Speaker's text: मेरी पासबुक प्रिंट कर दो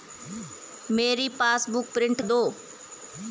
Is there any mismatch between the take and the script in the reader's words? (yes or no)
yes